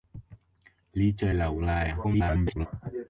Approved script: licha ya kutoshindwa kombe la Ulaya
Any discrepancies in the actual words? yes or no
yes